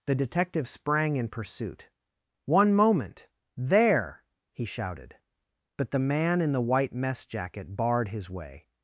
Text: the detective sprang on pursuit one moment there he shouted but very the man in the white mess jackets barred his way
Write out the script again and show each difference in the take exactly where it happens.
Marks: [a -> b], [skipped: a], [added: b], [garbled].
the detective sprang [on -> in] pursuit one moment there he shouted but [skipped: very] the man in the white mess [jackets -> jacket] barred his way